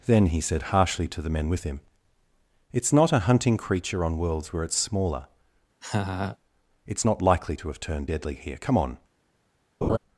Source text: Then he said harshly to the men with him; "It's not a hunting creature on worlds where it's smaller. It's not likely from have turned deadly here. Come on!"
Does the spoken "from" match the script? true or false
false